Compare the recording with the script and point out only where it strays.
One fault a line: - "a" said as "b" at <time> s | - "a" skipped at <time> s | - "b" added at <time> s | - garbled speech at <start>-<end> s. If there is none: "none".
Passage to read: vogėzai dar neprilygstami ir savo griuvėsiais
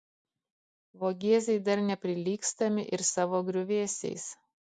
none